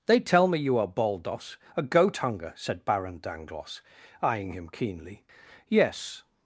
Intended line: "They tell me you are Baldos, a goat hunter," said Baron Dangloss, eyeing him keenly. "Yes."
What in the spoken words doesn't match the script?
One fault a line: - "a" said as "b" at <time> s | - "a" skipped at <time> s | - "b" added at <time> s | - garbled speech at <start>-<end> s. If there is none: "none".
- "hunter" said as "hunger" at 2.2 s